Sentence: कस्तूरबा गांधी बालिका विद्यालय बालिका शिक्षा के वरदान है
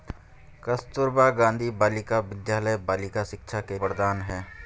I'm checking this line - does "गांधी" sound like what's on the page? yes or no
yes